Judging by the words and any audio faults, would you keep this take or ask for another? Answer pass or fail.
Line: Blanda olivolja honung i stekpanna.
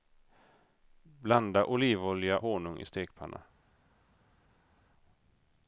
pass